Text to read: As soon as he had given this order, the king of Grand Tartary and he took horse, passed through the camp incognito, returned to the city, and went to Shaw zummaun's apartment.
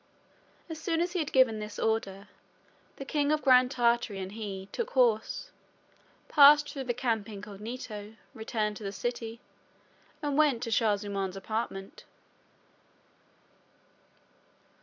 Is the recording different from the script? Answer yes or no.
no